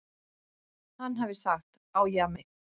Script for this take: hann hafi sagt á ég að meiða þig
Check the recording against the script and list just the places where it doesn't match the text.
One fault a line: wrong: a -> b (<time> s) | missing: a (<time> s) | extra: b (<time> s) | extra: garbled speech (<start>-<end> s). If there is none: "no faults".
missing: meiða (2.4 s)